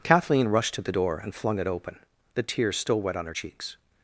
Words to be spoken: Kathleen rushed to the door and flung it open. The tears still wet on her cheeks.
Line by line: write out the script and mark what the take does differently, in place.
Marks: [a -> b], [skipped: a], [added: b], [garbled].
Kathleen rushed to the door and flung it open. The tears still wet on her cheeks.